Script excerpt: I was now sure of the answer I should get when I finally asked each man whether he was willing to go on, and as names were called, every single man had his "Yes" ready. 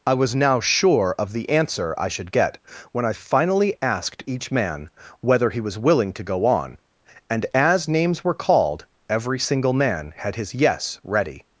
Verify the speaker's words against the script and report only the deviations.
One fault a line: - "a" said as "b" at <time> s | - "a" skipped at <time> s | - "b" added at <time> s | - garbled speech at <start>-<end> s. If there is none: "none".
none